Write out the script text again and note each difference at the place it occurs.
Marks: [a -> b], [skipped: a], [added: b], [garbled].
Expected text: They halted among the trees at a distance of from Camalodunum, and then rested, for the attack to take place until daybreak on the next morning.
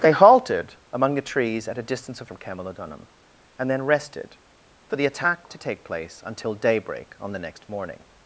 They halted among the trees at a distance of from Camalodunum, and then rested, for the attack to take place until daybreak on the next morning.